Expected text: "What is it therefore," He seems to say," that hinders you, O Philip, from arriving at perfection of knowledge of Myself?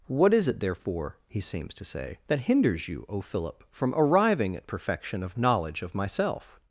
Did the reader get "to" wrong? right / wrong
right